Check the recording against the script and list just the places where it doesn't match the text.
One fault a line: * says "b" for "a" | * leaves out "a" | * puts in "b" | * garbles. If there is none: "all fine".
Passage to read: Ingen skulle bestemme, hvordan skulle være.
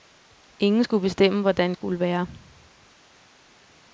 all fine